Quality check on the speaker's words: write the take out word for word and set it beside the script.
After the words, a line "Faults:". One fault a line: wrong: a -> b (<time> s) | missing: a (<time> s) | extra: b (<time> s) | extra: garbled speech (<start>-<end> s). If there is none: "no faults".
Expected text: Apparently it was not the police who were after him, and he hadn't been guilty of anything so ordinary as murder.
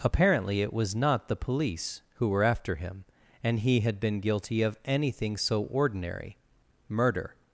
Apparently it was not the police who were after him, and he had been guilty of anything so ordinary murder.
Faults:
wrong: hadn't -> had (3.8 s)
missing: as (6.4 s)